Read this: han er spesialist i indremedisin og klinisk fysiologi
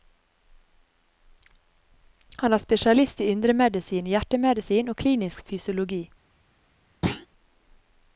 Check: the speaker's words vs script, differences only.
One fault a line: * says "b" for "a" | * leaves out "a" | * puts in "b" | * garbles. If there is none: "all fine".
* puts in "hjertemedisin"